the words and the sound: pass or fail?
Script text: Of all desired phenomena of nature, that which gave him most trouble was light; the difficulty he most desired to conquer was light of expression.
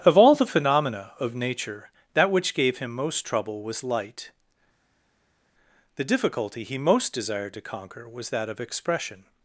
fail